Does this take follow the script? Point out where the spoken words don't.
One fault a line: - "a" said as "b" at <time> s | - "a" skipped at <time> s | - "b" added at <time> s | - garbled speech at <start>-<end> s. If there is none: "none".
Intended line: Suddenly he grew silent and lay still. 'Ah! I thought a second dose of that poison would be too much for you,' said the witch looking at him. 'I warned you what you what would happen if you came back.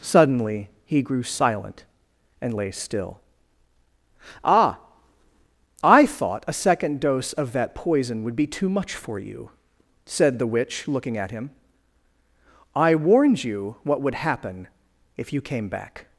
- "you what" skipped at 14.0 s